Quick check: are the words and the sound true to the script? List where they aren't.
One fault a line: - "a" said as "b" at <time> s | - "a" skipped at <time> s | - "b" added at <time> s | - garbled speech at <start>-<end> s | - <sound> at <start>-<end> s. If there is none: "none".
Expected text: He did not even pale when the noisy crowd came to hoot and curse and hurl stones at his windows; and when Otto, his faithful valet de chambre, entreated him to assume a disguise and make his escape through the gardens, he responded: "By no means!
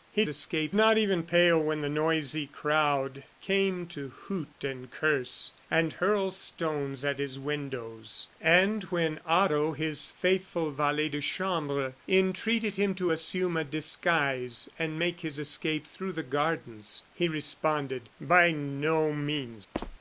- "did" said as "escape" at 0.3 s
- squeak at 19.7-20.0 s